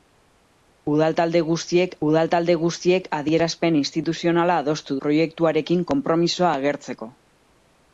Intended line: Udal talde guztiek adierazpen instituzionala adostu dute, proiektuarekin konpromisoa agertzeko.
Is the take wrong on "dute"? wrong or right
wrong